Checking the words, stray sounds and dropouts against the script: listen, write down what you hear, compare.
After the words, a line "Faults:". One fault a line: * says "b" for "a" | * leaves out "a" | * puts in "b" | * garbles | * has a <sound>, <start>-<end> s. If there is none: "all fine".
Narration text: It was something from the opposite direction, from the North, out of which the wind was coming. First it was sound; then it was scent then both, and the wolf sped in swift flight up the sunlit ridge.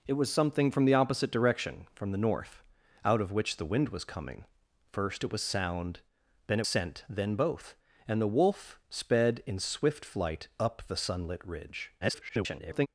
It was something from the opposite direction, from the North, out of which the wind was coming. First it was sound; then it scent then both, and the wolf sped in swift flight up the sunlit ridge. [garbled]
Faults:
* leaves out "was"
* garbles